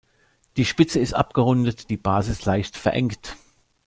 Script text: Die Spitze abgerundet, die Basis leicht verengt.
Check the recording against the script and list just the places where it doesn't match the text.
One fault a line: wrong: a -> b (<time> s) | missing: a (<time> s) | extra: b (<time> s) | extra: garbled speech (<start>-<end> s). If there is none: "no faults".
extra: ist (1.0 s)